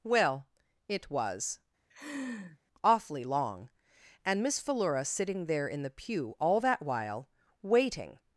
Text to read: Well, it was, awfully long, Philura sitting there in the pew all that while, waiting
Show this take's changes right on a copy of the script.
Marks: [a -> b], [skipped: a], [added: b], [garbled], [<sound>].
Well, it was, [laugh] awfully long, [added: and Miss] Philura sitting there in the pew all that while, waiting